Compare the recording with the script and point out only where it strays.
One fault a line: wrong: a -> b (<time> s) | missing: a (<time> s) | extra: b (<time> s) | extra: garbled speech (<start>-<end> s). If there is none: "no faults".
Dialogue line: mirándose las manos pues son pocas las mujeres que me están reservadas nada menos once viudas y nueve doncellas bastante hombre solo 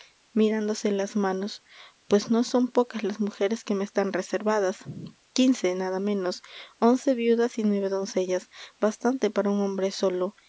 extra: no (2.3 s)
extra: quince (5.3 s)
extra: para un (9.3 s)